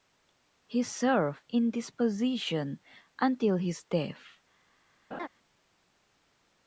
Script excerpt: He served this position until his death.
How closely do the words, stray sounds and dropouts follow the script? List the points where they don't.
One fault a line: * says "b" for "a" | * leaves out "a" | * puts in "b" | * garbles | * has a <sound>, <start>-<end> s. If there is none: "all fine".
* puts in "in"
* has a laugh, 5.1-5.3 s